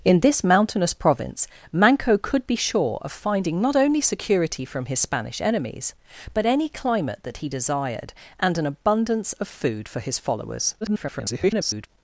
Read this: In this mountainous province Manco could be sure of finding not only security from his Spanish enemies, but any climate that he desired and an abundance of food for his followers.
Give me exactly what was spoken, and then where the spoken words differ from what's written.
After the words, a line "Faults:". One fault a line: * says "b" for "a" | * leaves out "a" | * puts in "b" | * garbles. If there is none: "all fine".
In this mountainous province Manco could be sure of finding not only security from his Spanish enemies, but any climate that he desired and an abundance of food for his followers. [garbled]
Faults:
* garbles